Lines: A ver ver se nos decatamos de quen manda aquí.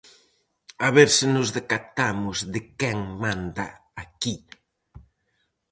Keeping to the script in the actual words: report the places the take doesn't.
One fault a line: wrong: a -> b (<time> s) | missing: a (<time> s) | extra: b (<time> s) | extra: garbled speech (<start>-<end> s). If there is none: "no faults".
missing: ver (1.1 s)